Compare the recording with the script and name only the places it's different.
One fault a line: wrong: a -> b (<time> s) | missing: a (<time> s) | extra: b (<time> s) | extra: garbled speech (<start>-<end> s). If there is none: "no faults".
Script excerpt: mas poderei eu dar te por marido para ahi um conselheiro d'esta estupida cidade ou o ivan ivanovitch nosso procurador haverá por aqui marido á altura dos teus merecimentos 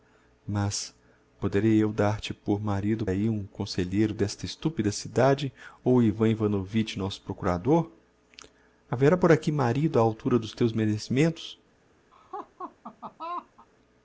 missing: para (3.0 s)